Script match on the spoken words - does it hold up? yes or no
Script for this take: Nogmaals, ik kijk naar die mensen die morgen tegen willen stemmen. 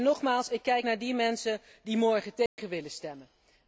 yes